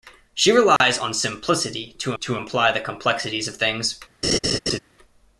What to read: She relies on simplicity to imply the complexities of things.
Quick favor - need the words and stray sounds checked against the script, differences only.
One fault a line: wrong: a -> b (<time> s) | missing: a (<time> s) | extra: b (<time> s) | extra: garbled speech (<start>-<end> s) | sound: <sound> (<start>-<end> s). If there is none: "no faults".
sound: dropout (0.8-0.8 s)
extra: to (2.2 s)
sound: laugh (4.2-4.8 s)